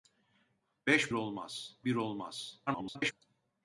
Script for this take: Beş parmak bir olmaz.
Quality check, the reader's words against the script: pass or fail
fail